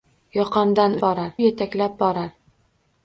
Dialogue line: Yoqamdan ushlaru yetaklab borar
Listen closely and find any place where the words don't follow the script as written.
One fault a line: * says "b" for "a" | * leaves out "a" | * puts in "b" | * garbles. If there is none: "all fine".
* says "borar" for "ushlaru"